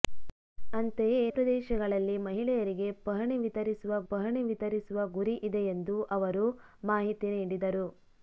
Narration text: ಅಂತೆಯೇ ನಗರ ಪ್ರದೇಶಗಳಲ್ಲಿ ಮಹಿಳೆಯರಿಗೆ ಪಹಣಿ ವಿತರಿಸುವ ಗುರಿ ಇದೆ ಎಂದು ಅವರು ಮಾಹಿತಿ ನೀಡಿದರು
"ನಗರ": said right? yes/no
no